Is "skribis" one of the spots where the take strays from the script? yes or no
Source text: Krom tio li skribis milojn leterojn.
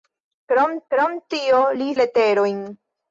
yes